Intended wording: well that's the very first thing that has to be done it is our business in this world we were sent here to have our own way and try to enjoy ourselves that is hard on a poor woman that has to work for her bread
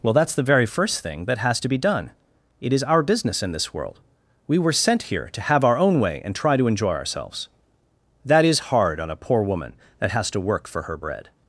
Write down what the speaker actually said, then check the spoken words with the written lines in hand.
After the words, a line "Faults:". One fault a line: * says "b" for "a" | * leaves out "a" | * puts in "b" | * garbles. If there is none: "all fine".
well that's the very first thing that has to be done it is our business in this world we were sent here to have our own way and try to enjoy ourselves that is hard on a poor woman that has to work for her bread
Faults:
all fine